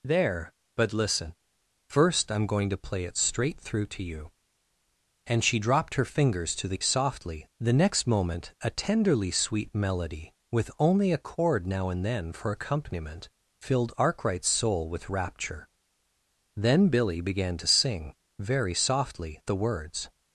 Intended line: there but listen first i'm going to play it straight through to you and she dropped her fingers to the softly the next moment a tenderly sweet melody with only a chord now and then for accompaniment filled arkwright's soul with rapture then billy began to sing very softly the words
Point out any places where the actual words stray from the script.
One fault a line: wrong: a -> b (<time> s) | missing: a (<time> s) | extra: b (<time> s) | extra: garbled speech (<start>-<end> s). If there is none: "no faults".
no faults